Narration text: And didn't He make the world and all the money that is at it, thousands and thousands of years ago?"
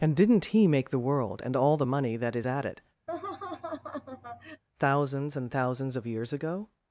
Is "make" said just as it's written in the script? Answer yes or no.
yes